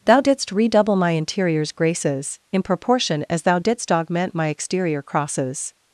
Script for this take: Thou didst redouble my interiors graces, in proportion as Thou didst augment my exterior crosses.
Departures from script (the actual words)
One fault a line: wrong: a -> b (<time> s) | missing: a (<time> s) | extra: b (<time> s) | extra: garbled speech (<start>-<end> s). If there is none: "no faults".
no faults